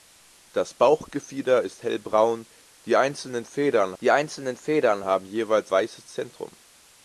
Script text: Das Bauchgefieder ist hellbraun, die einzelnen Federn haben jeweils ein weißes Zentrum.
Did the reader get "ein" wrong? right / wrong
wrong